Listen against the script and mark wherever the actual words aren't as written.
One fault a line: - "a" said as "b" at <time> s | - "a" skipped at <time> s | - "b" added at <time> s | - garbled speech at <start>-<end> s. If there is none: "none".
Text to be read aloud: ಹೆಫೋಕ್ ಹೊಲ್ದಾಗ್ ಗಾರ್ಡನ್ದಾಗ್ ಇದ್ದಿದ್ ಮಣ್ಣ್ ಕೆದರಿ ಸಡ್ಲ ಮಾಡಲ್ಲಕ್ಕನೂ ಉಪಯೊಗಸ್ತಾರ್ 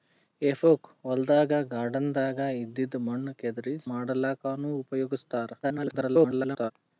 - "ಸಡ್ಲ" skipped at 3.8 s
- garbled speech at 5.6-6.7 s